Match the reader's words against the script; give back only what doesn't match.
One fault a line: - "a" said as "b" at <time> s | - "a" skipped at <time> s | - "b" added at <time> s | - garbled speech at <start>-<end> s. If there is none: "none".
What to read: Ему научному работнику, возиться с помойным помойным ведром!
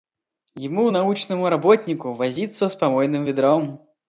- "помойным" skipped at 3.2 s